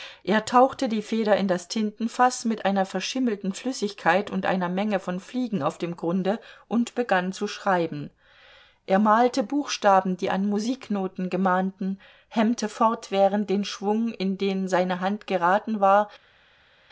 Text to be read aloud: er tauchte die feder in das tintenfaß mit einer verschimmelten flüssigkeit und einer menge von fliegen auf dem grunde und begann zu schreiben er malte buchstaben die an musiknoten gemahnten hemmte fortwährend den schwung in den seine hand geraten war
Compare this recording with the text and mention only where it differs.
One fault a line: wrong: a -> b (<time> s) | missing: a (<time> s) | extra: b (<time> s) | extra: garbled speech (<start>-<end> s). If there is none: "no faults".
no faults